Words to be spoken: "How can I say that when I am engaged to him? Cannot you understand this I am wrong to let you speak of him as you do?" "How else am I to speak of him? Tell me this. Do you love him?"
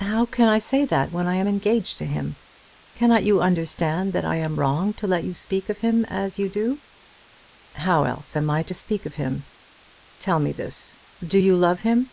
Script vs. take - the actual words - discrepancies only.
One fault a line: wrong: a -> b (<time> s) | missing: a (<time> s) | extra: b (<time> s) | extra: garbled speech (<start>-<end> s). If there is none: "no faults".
wrong: this -> that (4.1 s)